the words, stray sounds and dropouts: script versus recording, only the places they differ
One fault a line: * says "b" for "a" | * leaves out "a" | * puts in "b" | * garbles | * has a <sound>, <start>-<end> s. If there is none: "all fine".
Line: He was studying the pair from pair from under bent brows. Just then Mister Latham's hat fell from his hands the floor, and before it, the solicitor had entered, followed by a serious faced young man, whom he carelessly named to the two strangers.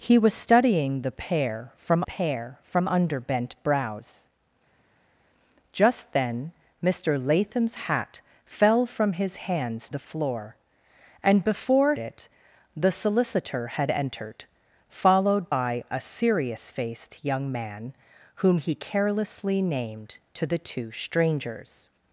all fine